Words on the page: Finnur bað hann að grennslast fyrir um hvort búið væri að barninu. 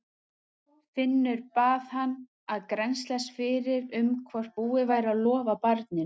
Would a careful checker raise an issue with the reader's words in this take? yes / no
yes